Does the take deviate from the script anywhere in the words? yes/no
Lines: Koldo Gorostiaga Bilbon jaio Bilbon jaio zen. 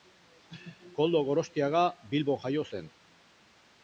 yes